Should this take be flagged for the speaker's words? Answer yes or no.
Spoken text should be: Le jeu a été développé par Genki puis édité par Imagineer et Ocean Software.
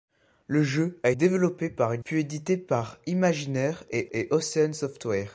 yes